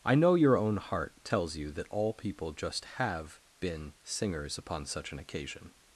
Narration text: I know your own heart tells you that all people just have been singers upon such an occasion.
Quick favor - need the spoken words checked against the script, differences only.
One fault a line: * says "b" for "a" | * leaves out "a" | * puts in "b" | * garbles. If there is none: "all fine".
all fine